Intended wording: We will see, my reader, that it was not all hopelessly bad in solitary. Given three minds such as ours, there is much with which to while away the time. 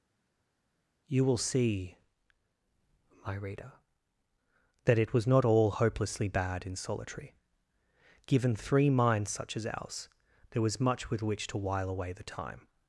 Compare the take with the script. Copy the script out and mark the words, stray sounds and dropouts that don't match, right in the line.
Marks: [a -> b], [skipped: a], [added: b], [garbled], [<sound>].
[We -> You] will see, my reader, that it was not all hopelessly bad in solitary. Given three minds such as ours, there [is -> was] much with which to while away the time.